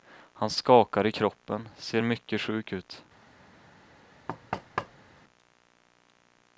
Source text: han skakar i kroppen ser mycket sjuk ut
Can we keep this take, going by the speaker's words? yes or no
yes